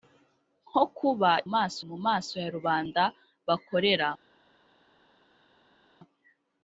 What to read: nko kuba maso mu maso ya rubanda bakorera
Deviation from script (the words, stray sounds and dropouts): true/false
false